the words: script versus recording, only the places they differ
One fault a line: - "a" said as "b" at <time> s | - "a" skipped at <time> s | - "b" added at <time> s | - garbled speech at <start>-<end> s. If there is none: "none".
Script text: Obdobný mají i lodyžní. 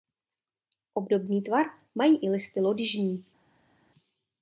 - "tvar" added at 1.4 s
- "listy" added at 2.3 s